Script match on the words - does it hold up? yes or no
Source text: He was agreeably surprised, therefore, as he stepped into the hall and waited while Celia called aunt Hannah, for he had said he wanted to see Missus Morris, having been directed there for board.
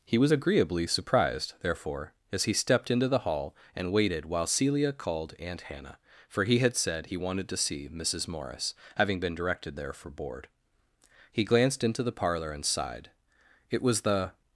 no